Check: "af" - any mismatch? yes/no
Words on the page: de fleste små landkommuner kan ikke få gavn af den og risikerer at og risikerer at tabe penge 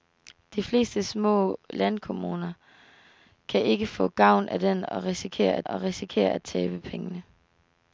no